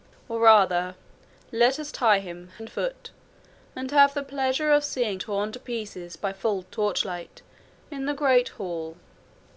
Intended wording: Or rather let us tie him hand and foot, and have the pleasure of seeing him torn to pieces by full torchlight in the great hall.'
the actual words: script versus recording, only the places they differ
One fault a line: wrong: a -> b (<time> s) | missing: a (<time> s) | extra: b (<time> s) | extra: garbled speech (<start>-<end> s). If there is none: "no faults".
missing: hand (2.5 s)
missing: him (5.2 s)